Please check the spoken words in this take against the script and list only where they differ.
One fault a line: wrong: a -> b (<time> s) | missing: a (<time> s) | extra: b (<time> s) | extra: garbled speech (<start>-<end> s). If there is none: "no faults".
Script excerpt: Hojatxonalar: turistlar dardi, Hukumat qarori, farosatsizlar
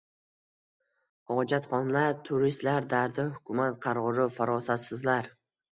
no faults